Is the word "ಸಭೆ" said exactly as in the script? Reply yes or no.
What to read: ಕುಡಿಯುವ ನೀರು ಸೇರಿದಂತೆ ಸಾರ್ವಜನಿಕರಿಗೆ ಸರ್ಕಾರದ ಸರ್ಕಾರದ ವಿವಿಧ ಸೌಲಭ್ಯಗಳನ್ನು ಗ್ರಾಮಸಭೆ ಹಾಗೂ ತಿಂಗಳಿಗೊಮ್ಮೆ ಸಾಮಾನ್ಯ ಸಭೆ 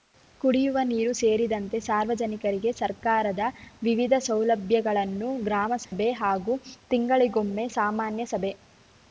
yes